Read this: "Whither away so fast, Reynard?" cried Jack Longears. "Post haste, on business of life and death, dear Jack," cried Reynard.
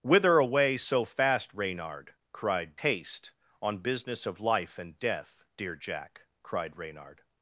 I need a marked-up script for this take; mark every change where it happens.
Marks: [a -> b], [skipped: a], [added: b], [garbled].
"Whither away so fast, Reynard?" cried [skipped: Jack Longears. "Post] haste, on business of life and death, dear Jack," cried Reynard.